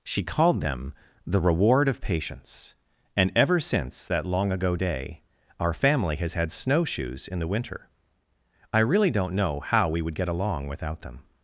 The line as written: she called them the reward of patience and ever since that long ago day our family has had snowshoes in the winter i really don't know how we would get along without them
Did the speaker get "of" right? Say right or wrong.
right